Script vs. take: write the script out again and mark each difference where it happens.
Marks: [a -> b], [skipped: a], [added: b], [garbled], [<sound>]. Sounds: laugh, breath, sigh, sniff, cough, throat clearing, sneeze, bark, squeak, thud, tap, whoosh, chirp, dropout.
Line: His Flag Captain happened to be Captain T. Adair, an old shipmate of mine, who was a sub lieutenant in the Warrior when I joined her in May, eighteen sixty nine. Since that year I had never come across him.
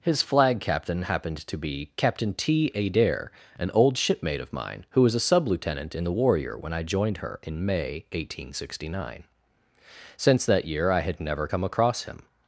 His Flag Captain happened to be Captain T. Adair, an old shipmate of mine, who was a sub lieutenant in the Warrior when I joined her in May, eighteen sixty nine. Since that year I had never come across him.